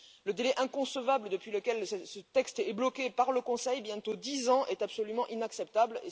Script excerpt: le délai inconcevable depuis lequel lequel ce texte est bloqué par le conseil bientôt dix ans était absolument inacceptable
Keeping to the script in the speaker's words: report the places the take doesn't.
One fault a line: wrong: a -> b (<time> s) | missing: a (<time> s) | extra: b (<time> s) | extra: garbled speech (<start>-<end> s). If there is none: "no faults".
missing: lequel (1.9 s)
wrong: était -> est (4.7 s)